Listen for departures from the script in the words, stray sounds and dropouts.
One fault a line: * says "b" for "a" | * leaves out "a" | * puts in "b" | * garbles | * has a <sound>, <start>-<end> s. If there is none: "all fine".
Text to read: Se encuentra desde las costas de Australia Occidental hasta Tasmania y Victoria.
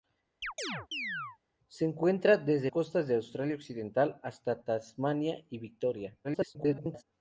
* has a chirp, 0.4-1.4 s
* leaves out "las"
* garbles